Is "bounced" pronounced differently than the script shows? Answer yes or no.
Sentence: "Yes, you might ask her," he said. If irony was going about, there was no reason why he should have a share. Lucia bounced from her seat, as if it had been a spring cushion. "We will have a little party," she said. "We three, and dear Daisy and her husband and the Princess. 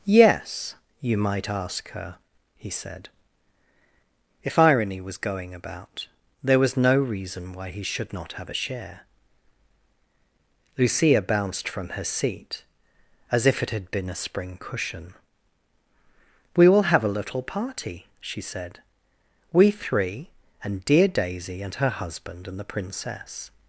no